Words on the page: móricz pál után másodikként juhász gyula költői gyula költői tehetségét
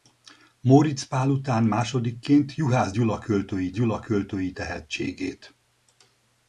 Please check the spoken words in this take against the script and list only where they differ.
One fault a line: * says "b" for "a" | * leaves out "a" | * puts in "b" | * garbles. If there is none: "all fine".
all fine